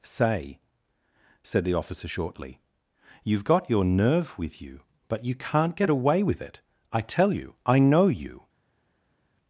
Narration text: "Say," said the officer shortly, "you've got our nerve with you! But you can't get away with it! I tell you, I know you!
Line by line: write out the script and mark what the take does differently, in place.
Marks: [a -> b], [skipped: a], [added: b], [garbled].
"Say," said the officer shortly, "you've got [our -> your] nerve with you! But you can't get away with it! I tell you, I know you!